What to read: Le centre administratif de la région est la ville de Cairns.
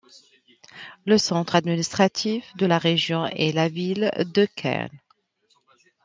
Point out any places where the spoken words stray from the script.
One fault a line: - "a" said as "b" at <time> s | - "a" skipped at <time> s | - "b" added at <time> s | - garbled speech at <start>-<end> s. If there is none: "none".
none